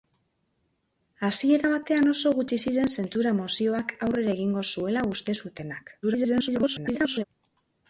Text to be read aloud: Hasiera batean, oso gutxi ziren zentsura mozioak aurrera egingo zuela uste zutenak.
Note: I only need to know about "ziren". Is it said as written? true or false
true